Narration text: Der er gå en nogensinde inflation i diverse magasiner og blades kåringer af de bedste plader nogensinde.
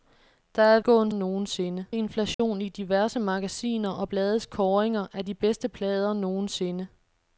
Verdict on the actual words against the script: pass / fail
pass